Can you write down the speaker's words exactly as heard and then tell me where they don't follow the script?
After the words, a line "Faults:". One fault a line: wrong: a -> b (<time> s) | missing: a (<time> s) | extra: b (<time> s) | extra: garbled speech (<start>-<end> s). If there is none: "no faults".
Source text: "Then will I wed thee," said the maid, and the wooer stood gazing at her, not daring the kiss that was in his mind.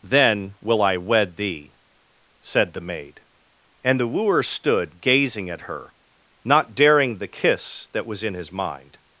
"Then will I wed thee," said the maid, and the wooer stood gazing at her, not daring the kiss that was in his mind.
Faults:
no faults